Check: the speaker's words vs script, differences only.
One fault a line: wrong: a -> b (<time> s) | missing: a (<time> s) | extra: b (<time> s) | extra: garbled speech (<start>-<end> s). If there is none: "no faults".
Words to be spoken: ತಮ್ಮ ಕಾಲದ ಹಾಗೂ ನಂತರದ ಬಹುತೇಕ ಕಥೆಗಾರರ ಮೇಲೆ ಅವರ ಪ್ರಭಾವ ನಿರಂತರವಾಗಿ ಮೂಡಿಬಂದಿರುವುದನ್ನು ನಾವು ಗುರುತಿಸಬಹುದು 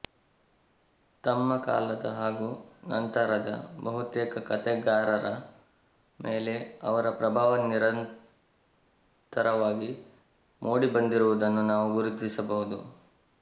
no faults